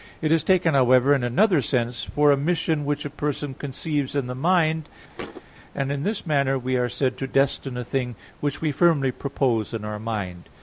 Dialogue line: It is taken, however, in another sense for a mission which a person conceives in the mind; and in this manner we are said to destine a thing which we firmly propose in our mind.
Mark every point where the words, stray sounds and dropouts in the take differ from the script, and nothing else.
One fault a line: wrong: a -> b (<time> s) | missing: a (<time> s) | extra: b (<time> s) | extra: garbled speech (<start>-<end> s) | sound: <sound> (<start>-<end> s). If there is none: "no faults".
sound: thud (5.2-5.4 s)